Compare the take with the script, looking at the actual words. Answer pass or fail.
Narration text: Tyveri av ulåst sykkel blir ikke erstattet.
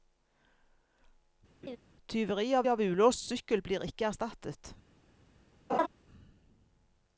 fail